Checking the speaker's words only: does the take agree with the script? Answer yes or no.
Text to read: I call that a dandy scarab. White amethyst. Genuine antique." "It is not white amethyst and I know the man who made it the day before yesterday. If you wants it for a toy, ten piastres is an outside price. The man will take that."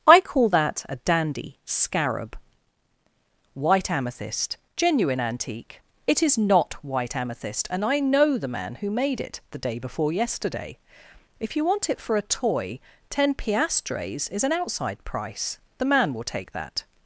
no